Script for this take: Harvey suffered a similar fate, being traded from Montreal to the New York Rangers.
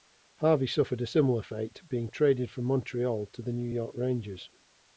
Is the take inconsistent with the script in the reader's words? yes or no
no